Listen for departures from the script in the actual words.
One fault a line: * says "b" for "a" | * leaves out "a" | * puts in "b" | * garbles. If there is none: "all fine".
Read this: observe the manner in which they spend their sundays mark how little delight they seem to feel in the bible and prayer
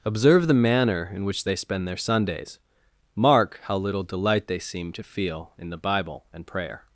all fine